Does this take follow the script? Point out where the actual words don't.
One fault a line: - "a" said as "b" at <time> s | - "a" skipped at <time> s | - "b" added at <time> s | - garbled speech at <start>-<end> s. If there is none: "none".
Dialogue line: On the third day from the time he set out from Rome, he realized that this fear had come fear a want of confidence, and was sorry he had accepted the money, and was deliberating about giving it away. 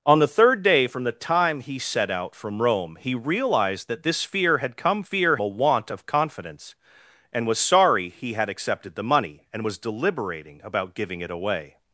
none